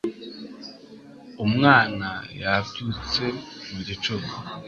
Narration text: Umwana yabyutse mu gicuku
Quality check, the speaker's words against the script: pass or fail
pass